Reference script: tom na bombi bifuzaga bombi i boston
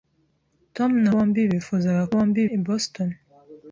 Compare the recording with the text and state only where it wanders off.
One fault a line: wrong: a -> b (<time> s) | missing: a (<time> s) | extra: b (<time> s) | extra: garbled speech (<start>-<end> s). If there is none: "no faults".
no faults